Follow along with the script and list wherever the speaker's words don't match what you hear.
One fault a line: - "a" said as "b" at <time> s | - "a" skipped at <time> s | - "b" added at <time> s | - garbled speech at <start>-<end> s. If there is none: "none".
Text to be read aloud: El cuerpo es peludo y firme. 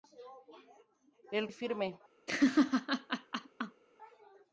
- "cuerpo es peludo" skipped at 1.5 s